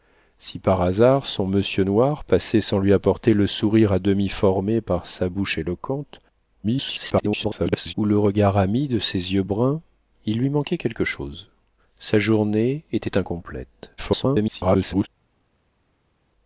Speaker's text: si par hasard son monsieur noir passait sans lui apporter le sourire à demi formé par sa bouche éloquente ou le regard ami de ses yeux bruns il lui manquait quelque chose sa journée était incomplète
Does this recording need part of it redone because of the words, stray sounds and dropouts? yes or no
yes